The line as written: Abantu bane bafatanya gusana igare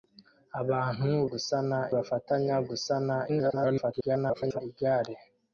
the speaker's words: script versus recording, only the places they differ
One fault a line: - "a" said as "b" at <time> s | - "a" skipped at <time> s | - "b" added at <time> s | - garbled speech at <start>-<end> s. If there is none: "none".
- "bane" said as "gusana" at 1.3 s
- garbled speech at 3.3-4.6 s